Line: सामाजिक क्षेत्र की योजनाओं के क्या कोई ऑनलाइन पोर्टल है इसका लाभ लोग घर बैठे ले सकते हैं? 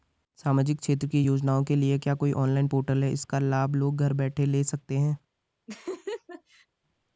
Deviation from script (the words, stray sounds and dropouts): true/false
true